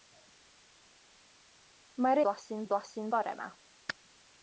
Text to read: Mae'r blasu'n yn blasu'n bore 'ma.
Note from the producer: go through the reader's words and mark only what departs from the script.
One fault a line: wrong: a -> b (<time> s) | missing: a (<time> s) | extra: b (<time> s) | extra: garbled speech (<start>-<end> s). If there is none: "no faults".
no faults